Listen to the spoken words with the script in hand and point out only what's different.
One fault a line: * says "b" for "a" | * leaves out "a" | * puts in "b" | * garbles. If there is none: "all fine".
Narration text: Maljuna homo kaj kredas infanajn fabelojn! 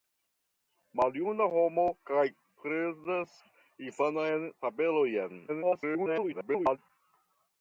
* garbles